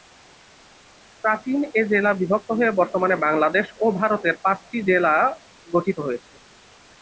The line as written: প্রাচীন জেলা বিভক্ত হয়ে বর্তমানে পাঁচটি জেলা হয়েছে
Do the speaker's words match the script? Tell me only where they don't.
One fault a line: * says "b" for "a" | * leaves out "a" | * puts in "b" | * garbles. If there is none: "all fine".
* puts in "এ"
* puts in "বাংলাদেশ ও ভারতের"
* puts in "গঠিত"